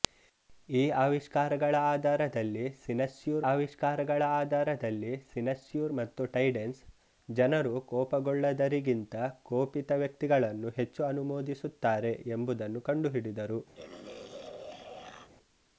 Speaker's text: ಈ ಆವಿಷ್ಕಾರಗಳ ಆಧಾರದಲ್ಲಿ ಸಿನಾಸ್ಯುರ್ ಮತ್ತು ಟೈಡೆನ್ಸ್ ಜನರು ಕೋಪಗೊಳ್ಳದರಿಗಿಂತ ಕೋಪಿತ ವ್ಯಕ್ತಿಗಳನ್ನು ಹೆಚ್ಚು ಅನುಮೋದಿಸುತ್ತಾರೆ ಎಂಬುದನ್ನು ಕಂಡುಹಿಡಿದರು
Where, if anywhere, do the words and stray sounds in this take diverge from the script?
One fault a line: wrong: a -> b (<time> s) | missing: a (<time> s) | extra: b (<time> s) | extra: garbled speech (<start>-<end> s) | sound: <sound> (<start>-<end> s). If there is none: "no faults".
extra: ಆವಿಷ್ಕಾರಗಳ ಆಧಾರದಲ್ಲಿ ಸಿನಾಸ್ಯುರ್ (3.5 s)
sound: throat clearing (13.8-15.3 s)